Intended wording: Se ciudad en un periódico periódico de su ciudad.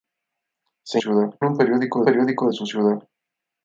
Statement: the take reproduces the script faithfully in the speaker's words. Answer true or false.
true